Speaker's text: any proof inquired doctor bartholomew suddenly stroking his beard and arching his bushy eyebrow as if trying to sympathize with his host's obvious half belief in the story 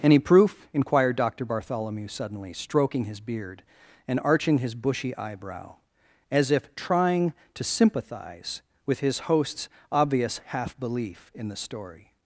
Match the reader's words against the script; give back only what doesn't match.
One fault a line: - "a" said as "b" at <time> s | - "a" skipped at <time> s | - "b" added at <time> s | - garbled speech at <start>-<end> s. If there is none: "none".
none